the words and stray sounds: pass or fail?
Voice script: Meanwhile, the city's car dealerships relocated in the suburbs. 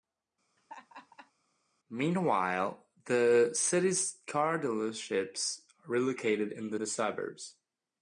fail